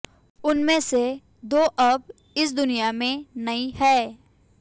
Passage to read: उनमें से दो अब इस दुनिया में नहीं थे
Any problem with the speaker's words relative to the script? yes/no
yes